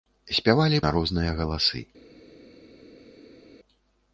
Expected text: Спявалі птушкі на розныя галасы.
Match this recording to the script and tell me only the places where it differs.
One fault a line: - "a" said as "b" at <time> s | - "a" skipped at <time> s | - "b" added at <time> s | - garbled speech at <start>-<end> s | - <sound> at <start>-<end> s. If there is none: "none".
- "птушкі" skipped at 0.8 s